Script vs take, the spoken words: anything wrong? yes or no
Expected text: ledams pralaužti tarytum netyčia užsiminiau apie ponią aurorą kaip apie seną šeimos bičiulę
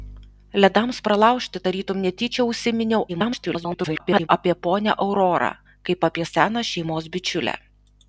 yes